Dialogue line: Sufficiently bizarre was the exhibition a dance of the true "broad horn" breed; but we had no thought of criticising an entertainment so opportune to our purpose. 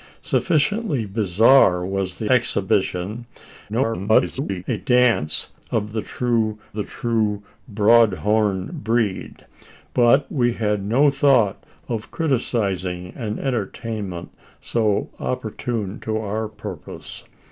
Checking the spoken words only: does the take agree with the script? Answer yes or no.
no